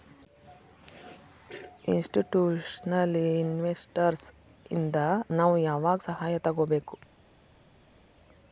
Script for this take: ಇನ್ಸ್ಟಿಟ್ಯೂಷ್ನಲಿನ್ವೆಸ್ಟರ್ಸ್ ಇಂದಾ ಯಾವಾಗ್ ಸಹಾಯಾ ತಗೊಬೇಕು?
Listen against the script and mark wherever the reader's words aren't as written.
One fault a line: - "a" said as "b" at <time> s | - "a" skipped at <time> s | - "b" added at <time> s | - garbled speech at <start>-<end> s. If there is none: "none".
- "ನಾವು" added at 5.3 s